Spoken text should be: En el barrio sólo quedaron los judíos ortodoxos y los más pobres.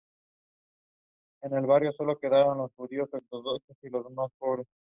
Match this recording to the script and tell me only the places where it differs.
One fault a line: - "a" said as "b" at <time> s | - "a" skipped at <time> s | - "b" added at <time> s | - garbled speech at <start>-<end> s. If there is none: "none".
none